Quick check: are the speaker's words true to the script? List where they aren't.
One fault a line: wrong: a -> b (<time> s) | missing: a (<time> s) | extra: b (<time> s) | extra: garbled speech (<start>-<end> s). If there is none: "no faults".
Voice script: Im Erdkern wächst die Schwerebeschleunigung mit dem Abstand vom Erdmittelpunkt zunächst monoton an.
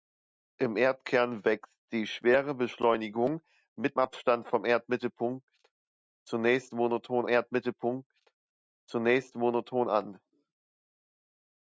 missing: dem (4.0 s)
extra: Erdmittelpunkt zunächst monoton (7.3 s)